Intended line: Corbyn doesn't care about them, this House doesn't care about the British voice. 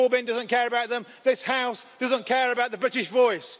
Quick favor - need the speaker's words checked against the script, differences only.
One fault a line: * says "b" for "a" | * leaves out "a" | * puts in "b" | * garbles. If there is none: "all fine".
all fine